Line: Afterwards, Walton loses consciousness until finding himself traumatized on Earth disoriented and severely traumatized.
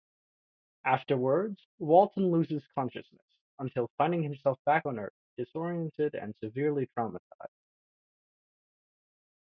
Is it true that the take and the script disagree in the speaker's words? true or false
true